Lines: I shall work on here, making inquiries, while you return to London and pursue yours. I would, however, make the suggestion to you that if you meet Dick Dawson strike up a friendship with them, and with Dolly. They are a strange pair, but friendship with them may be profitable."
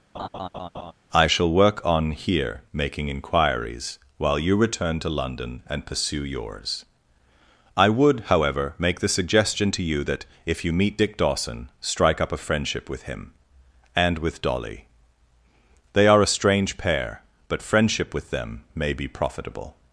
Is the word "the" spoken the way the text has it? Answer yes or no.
yes